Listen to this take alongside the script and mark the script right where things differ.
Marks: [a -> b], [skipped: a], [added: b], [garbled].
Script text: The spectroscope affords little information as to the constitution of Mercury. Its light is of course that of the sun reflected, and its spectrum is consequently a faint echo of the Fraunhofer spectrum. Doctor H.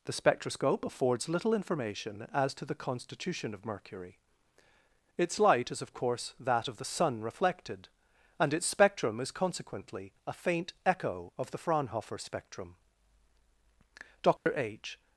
The spectroscope affords little information as to the constitution of Mercury. Its light is of course that of the sun reflected, and its spectrum is consequently a faint echo of the Fraunhofer spectrum. Doctor H.